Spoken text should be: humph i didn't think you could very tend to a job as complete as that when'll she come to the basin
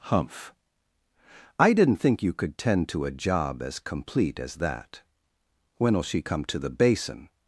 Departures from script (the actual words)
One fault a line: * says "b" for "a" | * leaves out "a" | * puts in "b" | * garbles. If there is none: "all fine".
* leaves out "very"